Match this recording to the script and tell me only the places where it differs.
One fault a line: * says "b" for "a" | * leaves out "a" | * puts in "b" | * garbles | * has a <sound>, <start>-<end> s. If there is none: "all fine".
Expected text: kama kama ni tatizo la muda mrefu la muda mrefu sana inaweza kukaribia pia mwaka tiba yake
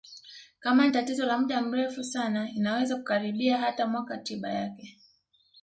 * leaves out "kama"
* leaves out "la muda mrefu"
* says "hata" for "pia"